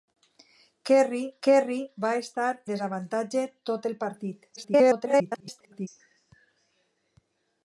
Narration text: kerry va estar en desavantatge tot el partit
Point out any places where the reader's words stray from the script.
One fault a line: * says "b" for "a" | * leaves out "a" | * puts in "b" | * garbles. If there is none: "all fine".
* puts in "kerry"
* leaves out "en"
* garbles